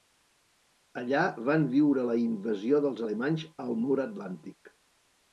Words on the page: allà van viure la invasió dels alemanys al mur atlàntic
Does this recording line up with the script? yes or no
yes